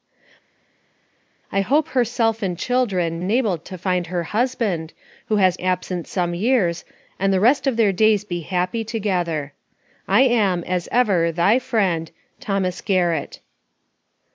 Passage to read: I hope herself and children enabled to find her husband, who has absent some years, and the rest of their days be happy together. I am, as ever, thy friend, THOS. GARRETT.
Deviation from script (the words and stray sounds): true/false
false